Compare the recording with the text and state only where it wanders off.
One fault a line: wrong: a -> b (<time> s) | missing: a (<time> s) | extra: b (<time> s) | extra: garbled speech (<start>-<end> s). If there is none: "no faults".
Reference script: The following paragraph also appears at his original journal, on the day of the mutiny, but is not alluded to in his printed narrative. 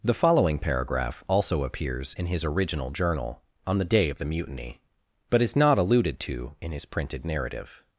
wrong: at -> in (2.1 s)